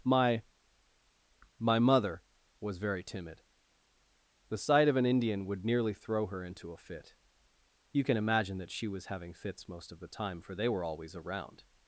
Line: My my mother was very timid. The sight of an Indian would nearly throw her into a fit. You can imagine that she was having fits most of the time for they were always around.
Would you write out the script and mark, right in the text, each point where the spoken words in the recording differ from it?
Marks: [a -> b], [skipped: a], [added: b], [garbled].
My my mother was very timid. The sight of an Indian would nearly throw her into a fit. You can imagine that she was having fits most of the time for they were always around.